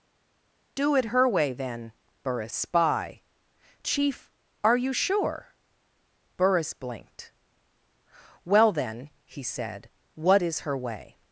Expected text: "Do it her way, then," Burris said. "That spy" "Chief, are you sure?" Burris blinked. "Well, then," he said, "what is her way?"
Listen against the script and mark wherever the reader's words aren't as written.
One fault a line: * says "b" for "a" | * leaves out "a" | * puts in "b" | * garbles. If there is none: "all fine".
* leaves out "said That"